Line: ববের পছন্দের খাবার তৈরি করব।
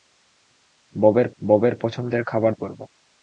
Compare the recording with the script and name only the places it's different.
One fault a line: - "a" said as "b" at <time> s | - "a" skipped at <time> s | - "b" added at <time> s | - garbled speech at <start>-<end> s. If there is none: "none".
- "ববের" added at 1.4 s
- "তৈরি" skipped at 2.5 s